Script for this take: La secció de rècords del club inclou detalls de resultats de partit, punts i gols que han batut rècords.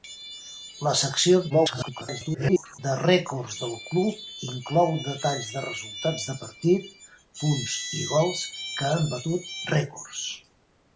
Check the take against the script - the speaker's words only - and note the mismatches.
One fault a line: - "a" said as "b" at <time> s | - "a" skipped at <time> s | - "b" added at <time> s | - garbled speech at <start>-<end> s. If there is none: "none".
- garbled speech at 1.5-2.8 s